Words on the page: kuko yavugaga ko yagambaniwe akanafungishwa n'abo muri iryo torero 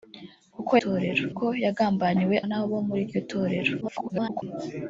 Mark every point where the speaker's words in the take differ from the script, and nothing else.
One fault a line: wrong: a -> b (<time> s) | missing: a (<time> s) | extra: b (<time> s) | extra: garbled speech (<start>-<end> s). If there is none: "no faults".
wrong: yavugaga -> torero (0.8 s)
missing: akanafungishwa (2.3 s)
extra: garbled speech (3.8-4.4 s)